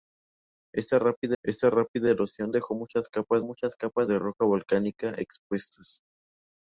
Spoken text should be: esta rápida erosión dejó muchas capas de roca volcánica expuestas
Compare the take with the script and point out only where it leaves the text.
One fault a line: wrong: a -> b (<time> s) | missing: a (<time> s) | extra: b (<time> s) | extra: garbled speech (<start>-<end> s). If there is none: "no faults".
extra: esta rápida (1.4 s)
extra: muchas capas (3.4 s)